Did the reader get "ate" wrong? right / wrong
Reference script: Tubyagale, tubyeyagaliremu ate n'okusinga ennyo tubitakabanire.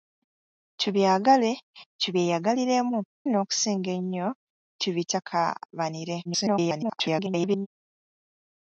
wrong